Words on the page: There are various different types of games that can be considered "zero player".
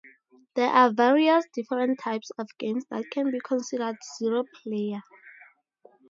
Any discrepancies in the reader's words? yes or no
no